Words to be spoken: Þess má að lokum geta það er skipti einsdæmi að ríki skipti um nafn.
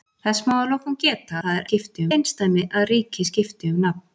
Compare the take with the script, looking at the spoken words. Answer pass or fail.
pass